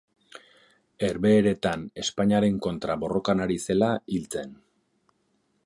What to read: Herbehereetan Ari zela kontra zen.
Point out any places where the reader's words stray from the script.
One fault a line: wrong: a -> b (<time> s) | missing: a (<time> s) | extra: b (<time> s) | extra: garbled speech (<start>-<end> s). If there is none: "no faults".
extra: Espainiaren kontra borrokan (2.0 s)
wrong: kontra -> hil (4.2 s)